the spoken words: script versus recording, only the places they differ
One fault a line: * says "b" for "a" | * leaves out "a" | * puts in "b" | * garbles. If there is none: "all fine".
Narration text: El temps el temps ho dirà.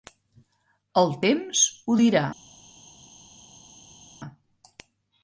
* leaves out "el temps"